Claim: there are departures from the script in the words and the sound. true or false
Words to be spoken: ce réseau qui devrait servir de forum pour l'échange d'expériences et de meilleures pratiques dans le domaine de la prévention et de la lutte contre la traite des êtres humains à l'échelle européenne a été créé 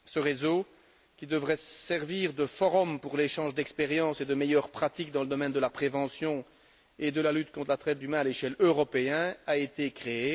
true